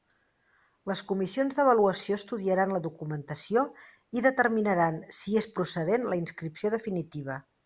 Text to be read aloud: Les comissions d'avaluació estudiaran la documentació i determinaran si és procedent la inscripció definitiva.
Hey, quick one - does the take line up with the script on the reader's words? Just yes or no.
yes